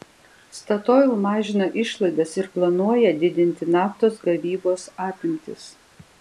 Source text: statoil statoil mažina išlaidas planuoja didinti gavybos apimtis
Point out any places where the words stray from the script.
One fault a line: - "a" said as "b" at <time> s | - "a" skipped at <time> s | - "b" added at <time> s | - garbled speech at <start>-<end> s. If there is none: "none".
- "statoil" skipped at 1.1 s
- "ir" added at 2.4 s
- "naftos" added at 3.8 s